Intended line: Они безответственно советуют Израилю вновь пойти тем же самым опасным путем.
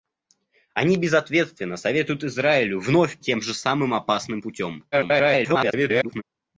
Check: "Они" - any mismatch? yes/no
no